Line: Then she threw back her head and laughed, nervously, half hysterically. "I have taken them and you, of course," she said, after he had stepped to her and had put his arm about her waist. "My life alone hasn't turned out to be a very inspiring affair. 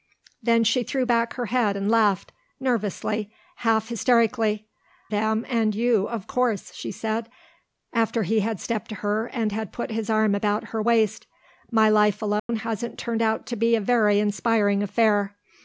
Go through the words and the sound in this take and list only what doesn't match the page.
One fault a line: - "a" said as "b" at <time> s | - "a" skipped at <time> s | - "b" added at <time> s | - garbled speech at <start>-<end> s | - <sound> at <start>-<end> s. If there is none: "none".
- "I have taken" skipped at 4.7 s
- dropout at 12.4-12.5 s